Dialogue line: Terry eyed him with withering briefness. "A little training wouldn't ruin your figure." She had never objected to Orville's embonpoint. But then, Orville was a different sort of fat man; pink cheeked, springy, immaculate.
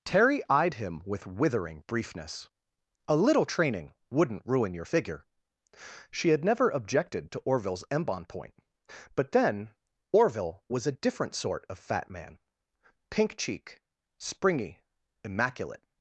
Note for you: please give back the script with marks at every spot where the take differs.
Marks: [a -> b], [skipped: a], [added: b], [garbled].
Terry eyed him with withering briefness. "A little training wouldn't ruin your figure." She had never objected to Orville's embonpoint. But then, Orville was a different sort of fat man; pink [cheeked, -> cheek] springy, immaculate.